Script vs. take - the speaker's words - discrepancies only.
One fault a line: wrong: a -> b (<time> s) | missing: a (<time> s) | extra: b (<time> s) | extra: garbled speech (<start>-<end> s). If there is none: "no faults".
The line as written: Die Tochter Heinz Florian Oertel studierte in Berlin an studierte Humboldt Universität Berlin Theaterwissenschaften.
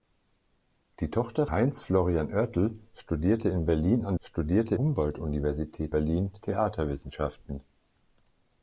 no faults